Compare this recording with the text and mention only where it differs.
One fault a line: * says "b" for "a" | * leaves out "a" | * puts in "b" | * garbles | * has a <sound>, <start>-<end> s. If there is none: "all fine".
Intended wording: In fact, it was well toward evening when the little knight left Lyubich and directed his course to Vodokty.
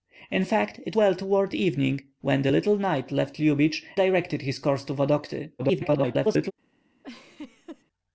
* leaves out "was"
* leaves out "and"
* garbles
* has a laugh, 7.0-7.8 s